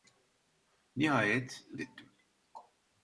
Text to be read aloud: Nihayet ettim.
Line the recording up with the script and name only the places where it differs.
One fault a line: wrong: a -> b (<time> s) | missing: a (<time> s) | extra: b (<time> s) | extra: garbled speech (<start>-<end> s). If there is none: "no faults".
no faults